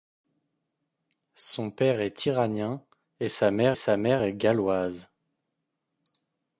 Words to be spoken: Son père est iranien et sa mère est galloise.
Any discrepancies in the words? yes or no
yes